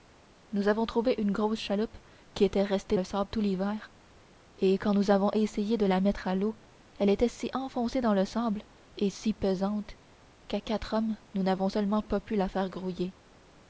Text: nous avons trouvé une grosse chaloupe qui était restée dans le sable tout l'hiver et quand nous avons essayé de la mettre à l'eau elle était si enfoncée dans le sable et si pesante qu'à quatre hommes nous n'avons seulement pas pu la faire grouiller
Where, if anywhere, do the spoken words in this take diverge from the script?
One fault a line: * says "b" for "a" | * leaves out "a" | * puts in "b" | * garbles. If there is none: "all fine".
* leaves out "dans"